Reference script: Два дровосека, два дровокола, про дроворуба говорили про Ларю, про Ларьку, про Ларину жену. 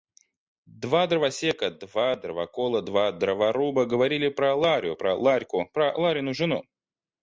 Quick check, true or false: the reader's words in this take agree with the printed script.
false